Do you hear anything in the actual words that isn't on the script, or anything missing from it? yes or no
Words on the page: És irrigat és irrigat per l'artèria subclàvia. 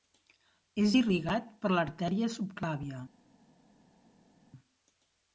yes